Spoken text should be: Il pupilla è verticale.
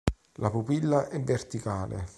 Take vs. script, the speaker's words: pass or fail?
fail